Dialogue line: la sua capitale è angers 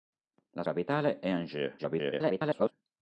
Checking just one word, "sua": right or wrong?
wrong